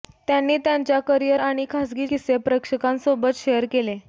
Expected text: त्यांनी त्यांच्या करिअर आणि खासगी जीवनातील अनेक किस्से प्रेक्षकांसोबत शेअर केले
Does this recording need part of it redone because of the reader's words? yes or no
yes